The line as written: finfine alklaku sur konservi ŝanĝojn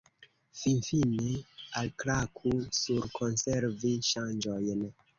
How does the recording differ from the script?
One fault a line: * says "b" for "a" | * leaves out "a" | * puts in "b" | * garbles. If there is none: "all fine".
all fine